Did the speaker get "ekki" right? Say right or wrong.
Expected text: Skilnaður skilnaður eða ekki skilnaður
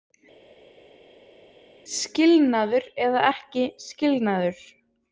right